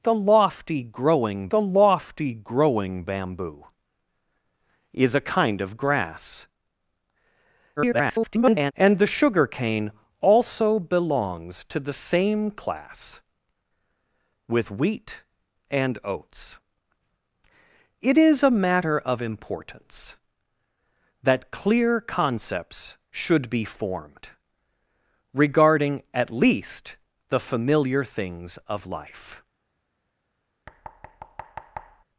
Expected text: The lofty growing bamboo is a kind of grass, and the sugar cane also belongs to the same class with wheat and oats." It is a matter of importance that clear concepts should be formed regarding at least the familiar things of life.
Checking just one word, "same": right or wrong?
right